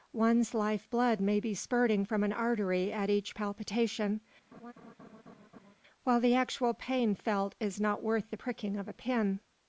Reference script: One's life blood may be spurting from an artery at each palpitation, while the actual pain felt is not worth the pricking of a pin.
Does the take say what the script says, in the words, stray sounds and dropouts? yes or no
no